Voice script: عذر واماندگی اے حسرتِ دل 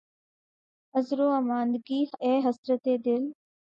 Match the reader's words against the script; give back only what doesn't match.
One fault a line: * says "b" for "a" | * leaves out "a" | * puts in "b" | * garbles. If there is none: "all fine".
all fine